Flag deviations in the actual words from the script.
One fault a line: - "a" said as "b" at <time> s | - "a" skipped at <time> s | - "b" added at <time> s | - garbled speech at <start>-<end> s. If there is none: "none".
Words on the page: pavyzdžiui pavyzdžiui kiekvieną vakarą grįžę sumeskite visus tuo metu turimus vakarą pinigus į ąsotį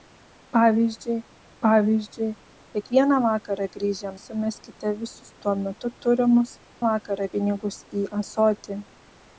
none